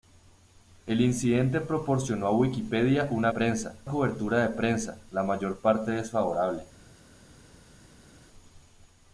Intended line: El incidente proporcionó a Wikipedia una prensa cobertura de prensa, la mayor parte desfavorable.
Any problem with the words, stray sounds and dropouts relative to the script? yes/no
no